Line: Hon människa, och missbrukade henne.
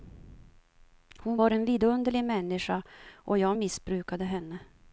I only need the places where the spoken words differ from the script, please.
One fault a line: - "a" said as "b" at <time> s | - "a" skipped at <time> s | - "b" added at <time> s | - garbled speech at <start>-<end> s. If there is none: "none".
- "var en vidunderlig" added at 1.3 s
- "jag" added at 3.4 s